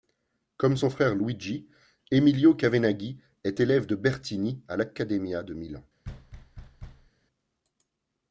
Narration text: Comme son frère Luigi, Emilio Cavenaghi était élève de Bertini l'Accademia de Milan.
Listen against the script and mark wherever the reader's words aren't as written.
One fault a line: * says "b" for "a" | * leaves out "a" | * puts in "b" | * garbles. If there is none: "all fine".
* says "est" for "était"
* puts in "à"